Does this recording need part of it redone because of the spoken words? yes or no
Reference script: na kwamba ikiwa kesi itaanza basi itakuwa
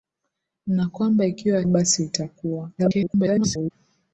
yes